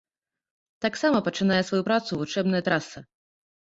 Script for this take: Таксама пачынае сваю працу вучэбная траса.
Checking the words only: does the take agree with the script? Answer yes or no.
yes